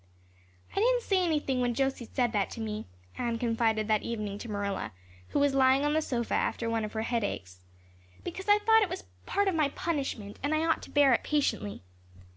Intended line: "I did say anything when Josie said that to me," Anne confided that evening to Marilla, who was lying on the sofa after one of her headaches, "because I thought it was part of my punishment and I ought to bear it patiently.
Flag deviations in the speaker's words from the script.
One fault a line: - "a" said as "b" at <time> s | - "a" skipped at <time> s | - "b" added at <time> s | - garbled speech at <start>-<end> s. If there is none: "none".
- "did" said as "didn't" at 0.8 s